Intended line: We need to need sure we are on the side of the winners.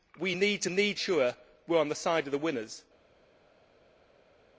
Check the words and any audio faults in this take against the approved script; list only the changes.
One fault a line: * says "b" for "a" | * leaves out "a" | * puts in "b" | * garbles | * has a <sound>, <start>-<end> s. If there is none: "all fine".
all fine